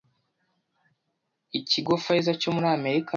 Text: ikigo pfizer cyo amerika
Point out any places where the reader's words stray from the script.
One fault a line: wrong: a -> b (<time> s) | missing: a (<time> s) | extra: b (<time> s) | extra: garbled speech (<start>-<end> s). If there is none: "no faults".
extra: muri (2.5 s)